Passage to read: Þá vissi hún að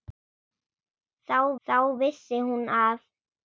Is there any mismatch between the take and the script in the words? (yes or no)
yes